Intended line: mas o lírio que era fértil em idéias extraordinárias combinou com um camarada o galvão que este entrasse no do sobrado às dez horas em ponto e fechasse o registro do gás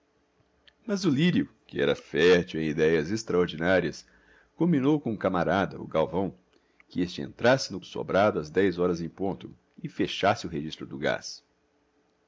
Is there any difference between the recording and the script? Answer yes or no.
no